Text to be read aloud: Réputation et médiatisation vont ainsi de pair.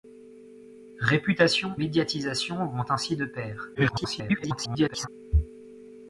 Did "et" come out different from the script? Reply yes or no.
yes